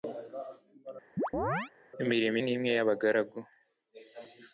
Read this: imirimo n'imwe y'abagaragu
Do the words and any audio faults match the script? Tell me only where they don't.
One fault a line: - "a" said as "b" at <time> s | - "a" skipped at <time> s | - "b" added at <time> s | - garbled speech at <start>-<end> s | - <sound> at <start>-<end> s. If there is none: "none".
- chirp at 1.2-1.7 s